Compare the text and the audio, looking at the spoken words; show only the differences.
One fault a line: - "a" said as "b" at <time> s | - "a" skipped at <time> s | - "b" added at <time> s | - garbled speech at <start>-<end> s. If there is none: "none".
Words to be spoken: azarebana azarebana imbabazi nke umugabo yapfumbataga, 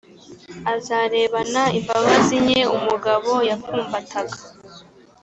- "azarebana" skipped at 1.6 s